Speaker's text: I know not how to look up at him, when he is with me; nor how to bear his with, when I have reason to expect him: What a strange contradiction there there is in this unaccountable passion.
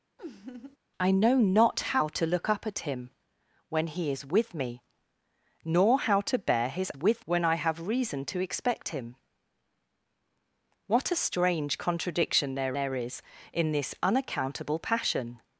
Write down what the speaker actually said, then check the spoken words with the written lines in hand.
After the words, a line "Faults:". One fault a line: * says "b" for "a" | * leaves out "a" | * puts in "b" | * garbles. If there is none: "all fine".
I know not how to look up at him, when he is with me; nor how to bear his with, when I have reason to expect him: What a strange contradiction there there is in this unaccountable passion.
Faults:
all fine